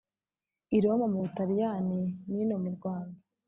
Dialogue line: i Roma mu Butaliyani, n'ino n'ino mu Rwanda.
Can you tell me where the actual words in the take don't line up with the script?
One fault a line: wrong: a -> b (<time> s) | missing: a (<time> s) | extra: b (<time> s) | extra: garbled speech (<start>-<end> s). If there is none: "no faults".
missing: n'ino (2.6 s)